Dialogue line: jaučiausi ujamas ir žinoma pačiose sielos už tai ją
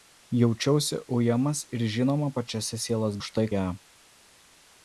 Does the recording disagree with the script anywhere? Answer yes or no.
no